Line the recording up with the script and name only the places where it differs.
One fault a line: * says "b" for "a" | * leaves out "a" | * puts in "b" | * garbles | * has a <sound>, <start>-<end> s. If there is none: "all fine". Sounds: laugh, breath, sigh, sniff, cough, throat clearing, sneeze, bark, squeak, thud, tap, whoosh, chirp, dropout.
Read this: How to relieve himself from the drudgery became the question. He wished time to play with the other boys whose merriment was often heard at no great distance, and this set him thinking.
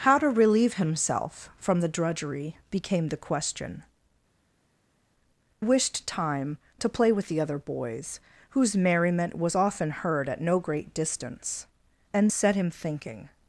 * leaves out "He"
* leaves out "this"